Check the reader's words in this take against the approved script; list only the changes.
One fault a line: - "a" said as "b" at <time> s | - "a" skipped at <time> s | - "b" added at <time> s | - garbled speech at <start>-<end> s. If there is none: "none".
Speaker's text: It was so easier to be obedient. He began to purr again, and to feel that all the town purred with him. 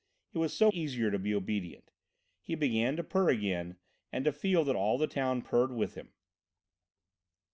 none